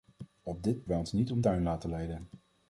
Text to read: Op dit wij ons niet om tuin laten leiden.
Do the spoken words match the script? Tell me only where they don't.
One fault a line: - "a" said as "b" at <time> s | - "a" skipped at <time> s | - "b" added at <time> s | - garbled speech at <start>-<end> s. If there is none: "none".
none